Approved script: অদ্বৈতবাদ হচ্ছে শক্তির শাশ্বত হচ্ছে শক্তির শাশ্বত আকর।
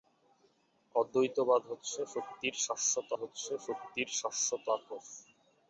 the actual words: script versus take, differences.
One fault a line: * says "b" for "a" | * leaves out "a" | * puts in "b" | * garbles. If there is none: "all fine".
all fine